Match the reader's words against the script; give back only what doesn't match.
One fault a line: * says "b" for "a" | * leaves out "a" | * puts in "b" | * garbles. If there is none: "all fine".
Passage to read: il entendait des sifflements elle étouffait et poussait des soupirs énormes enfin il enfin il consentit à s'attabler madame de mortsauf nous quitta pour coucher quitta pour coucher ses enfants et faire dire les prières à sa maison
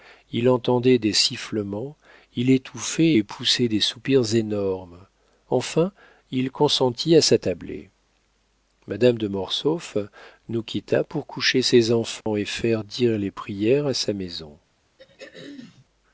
* says "il" for "elle"
* leaves out "enfin il"
* leaves out "quitta pour coucher"